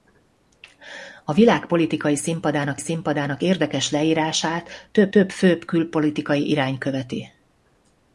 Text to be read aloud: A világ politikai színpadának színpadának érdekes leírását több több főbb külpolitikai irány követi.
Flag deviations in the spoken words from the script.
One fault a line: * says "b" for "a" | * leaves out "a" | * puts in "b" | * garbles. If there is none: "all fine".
all fine